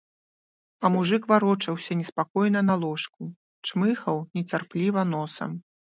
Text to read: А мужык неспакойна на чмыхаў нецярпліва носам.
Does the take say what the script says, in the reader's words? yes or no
no